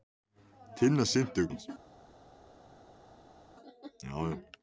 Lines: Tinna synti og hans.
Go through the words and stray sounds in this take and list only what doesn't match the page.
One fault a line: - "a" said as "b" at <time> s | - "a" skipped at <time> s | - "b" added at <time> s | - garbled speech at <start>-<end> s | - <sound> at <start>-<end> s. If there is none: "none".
none